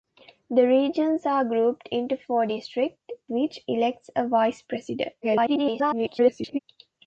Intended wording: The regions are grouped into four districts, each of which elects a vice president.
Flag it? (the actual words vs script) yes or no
yes